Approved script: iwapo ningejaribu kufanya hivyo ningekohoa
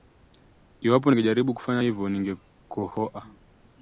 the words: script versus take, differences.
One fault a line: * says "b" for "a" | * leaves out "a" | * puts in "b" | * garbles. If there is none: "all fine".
all fine